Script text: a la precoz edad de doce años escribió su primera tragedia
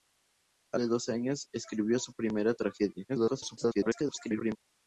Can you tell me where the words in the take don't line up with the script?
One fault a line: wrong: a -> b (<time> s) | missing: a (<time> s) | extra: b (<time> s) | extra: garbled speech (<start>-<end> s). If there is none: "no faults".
missing: la precoz edad (0.8 s)
extra: garbled speech (3.1-4.6 s)